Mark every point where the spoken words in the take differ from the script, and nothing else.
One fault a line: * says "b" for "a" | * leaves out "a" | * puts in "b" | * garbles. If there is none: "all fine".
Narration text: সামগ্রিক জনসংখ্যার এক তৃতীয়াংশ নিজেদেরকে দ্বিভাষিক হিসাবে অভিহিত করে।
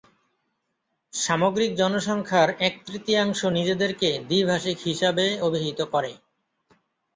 all fine